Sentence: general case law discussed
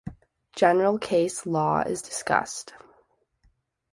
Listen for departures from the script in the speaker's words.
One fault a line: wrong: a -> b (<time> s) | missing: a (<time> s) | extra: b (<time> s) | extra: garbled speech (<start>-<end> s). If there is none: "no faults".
extra: is (1.8 s)